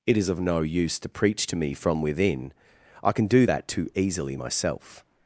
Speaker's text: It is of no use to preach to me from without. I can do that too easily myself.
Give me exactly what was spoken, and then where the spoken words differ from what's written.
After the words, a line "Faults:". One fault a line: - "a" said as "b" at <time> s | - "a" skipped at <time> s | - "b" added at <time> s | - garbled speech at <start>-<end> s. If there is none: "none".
It is of no use to preach to me from within. I can do that too easily myself.
Faults:
- "without" said as "within" at 2.0 s